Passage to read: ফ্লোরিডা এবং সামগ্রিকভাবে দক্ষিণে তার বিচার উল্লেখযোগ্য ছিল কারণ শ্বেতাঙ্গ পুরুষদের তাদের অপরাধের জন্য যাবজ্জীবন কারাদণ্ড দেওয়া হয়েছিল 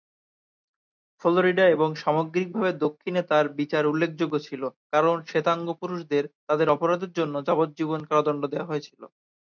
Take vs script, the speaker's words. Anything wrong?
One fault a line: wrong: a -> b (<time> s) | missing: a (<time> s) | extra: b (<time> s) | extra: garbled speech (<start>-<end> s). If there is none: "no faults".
no faults